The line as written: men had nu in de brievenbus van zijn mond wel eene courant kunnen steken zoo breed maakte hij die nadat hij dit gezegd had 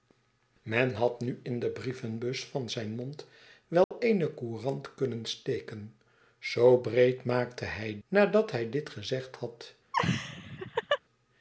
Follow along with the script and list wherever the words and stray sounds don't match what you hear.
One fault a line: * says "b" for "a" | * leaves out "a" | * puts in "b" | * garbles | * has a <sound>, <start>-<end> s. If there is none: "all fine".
* has a dropout, 3.8-3.9 s
* leaves out "die"
* has a laugh, 9.9-11.0 s